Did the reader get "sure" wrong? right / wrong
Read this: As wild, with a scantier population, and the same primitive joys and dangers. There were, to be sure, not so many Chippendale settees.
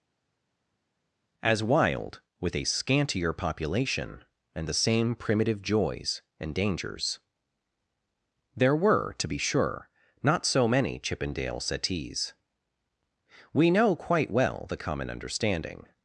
right